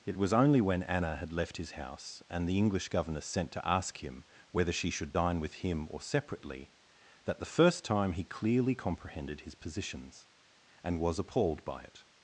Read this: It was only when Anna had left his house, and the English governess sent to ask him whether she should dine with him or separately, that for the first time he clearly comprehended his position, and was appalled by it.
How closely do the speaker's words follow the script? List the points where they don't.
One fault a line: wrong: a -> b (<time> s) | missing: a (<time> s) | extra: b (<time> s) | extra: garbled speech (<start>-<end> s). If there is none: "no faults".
missing: for (7.4 s)
wrong: position -> positions (9.5 s)